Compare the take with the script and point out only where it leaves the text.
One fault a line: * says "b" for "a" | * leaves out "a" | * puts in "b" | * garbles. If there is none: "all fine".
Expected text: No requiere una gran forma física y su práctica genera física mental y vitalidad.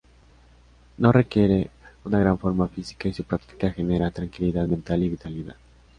* says "tranquilidad" for "física"